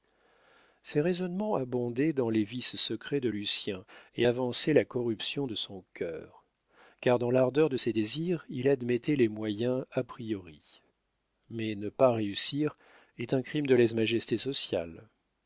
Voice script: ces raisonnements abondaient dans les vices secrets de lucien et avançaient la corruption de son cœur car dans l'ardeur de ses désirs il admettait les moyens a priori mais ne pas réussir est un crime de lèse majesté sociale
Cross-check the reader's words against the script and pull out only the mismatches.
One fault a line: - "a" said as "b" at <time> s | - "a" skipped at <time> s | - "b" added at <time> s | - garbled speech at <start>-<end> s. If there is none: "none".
none